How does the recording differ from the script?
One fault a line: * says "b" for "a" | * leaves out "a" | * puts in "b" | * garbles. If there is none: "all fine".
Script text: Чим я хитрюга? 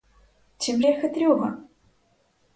all fine